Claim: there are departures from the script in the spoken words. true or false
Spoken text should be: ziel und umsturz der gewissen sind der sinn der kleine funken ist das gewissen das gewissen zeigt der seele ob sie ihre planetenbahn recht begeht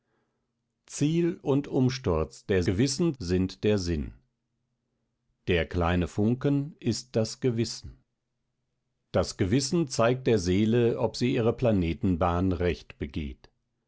false